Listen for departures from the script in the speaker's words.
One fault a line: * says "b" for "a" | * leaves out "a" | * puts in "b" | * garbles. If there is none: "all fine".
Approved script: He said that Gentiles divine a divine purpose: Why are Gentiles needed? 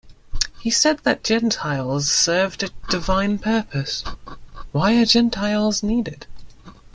* says "served" for "divine"